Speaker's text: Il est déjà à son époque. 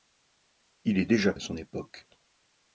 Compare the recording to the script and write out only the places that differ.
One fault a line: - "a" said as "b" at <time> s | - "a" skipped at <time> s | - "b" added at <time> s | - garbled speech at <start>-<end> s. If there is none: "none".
none